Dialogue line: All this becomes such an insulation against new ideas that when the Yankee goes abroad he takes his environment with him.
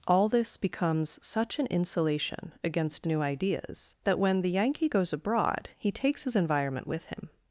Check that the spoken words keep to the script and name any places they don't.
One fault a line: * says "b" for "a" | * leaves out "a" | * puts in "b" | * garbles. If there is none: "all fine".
all fine